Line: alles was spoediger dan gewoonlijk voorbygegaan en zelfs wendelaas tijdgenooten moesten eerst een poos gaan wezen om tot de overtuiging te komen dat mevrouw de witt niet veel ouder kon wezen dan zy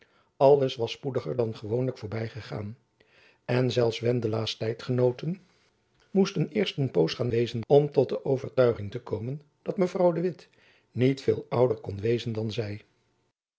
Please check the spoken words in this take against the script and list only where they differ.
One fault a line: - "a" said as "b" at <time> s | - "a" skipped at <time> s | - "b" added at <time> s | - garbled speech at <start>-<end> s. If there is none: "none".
none